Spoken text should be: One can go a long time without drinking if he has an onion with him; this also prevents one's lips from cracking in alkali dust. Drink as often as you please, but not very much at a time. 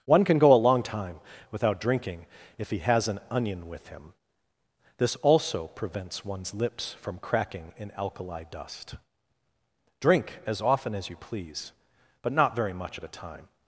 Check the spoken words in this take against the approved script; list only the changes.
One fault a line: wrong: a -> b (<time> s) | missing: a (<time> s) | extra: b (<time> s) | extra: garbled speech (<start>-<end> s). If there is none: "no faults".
no faults